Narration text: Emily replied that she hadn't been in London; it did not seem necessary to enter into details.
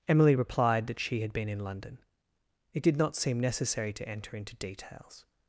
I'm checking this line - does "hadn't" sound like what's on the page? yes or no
no